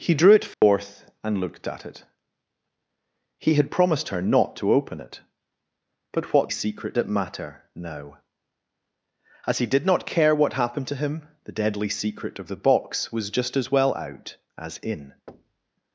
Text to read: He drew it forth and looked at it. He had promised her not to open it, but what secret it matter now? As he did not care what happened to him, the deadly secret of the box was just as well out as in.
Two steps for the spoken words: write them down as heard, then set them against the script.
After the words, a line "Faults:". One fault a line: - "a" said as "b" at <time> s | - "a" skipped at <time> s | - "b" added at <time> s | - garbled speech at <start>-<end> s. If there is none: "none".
He drew it forth and looked at it. He had promised her not to open it, but what secret it matter now? As he did not care what happened to him, the deadly secret of the box was just as well out as in.
Faults:
none